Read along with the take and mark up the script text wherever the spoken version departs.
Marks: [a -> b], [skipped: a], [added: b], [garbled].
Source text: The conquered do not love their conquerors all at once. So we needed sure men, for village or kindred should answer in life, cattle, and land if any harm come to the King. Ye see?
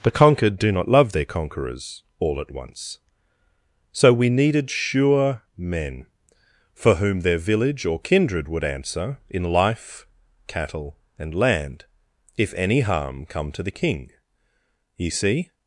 The conquered do not love their conquerors all at once. So we needed sure men, for [added: whom their] village or kindred [should -> would] answer in life, cattle, and land if any harm come to the King. Ye see?